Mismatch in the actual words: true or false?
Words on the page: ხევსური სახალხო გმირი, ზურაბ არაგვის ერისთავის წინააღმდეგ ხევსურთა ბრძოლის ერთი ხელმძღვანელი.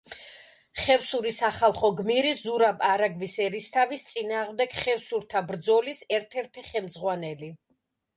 true